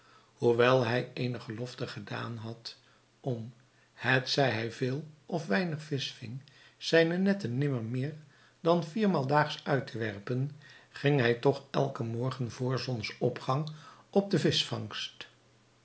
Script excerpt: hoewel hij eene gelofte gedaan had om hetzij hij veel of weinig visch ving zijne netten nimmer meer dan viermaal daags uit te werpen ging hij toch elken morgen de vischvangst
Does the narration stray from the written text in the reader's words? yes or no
yes